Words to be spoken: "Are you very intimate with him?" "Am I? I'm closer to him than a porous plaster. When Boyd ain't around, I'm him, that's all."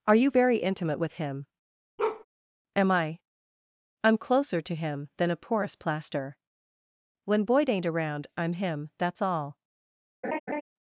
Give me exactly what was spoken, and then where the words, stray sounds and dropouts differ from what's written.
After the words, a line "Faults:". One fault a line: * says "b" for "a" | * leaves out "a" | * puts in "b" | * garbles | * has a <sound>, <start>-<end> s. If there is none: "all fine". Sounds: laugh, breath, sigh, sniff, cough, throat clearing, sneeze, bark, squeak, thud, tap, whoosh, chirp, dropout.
"Are you very intimate with him?" "Am I? I'm closer to him than a porous plaster. When Boyd ain't around, I'm him, that's all."
Faults:
* has a bark, 2.0-2.2 s
* has a laugh, 10.2-10.6 s